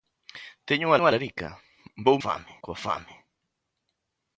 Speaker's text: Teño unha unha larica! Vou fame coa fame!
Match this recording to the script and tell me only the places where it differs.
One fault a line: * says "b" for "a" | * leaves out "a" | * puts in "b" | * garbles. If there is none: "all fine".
all fine